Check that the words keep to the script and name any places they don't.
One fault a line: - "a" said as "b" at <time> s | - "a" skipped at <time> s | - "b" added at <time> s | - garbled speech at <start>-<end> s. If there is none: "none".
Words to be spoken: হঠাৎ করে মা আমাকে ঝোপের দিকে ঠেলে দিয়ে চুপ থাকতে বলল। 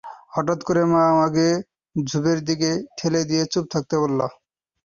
none